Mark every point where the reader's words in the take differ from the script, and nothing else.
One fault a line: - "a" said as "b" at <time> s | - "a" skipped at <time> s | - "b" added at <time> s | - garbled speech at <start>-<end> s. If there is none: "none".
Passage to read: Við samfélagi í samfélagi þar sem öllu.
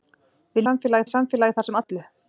none